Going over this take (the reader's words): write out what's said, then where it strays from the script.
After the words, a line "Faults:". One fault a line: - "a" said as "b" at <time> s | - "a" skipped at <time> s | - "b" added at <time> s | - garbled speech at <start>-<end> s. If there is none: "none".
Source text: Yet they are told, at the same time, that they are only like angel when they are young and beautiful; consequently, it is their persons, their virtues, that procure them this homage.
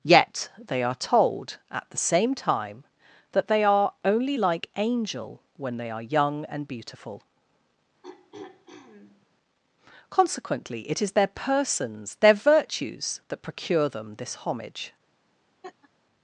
Yet they are told, at the same time, that they are only like angel when they are young and beautiful; consequently, it is their persons, their virtues, that procure them this homage.
Faults:
none